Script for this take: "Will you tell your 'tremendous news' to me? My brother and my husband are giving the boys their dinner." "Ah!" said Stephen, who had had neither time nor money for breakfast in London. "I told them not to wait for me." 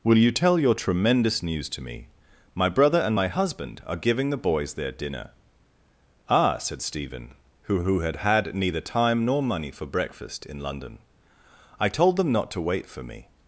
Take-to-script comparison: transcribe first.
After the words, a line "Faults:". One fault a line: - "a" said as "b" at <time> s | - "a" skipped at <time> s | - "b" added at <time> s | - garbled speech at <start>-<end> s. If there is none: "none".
"Will you tell your 'tremendous news' to me? My brother and my husband are giving the boys their dinner." "Ah!" said Stephen, who who had had neither time nor money for breakfast in London. "I told them not to wait for me."
Faults:
- "who" added at 7.8 s